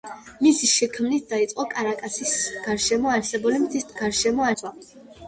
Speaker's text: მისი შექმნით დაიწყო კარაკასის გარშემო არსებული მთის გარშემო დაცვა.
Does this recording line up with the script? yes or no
yes